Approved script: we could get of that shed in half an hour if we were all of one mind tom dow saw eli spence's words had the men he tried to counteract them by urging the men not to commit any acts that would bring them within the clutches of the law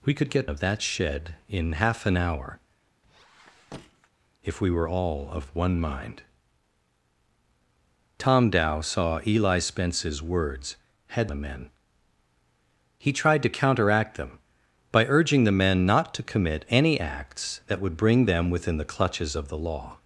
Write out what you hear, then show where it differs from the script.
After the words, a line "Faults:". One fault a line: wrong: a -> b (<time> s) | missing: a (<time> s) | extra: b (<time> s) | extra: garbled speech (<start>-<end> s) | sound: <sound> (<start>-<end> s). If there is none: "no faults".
we could get of that shed in half an hour if we were all of one mind tom dow saw eli spence's words had the men he tried to counteract them by urging the men not to commit any acts that would bring them within the clutches of the law
Faults:
sound: squeak (3.0-4.1 s)